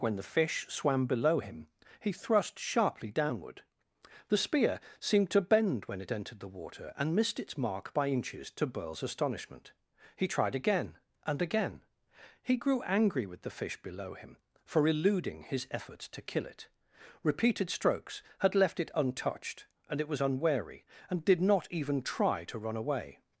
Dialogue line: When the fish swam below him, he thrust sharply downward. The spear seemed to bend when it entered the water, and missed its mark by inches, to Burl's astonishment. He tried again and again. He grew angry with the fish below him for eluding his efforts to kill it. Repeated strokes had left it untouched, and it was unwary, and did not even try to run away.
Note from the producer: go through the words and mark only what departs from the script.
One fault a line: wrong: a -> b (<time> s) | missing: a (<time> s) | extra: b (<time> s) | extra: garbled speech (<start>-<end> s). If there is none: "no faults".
no faults